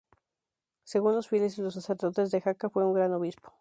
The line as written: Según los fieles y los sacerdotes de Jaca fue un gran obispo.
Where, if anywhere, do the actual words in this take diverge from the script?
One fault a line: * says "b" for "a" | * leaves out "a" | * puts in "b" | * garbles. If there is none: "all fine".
all fine